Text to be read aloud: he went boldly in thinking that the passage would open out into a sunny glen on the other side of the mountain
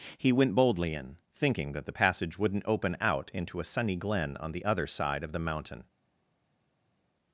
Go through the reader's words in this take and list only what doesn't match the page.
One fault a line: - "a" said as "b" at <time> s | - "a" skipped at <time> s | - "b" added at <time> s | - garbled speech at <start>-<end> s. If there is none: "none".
- "would" said as "wouldn't" at 2.4 s